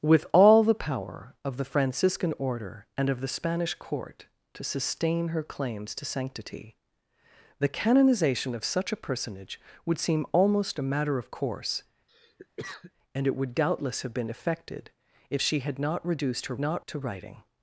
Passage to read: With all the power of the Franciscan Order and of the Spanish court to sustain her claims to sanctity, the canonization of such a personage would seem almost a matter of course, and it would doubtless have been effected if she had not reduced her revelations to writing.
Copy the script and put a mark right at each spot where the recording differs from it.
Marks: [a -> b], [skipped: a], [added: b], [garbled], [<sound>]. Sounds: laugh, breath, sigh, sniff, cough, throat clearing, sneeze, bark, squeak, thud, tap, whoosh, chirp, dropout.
With all the power of the Franciscan Order and of the Spanish court to sustain her claims to sanctity, the canonization of such a personage would seem almost a matter of course, [cough] and it would doubtless have been effected if she had not reduced her [revelations -> not] to writing.